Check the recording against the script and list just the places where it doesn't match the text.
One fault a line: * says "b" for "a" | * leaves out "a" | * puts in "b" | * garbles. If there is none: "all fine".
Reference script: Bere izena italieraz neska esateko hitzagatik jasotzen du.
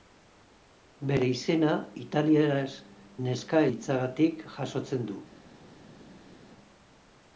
* leaves out "esateko"